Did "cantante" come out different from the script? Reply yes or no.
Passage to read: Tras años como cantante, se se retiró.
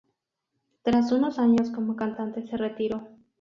no